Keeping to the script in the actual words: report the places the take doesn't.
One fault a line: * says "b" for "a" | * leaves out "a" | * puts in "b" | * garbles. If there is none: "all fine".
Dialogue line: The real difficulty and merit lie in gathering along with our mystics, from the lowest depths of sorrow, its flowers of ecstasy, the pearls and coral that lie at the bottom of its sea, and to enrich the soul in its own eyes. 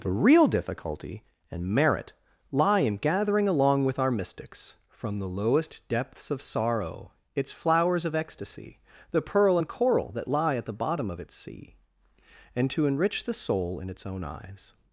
* says "pearl" for "pearls"